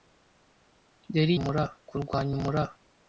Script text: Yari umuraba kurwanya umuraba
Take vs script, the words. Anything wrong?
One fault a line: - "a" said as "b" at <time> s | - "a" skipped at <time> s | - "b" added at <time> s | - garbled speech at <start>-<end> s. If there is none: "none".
none